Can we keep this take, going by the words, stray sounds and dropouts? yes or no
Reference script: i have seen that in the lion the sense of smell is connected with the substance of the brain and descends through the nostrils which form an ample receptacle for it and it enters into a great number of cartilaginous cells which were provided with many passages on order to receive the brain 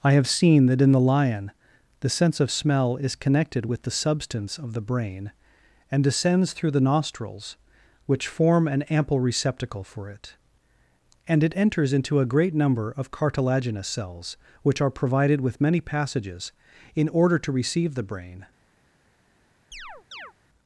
no